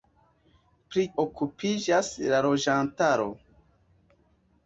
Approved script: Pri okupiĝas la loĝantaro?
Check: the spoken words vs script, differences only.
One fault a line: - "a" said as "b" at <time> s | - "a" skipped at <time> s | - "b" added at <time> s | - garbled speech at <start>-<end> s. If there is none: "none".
none